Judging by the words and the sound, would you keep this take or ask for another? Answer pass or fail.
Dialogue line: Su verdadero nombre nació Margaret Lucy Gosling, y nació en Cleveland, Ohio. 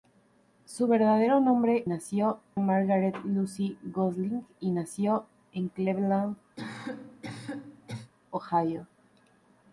fail